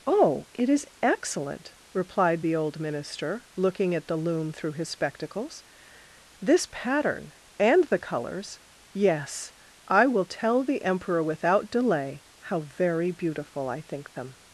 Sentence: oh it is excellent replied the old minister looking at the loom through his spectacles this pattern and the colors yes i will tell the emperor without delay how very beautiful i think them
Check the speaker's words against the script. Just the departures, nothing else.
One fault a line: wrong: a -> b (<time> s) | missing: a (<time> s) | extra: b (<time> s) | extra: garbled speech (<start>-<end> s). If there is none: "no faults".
no faults